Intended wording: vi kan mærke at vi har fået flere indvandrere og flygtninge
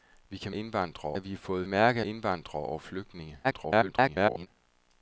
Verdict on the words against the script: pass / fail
fail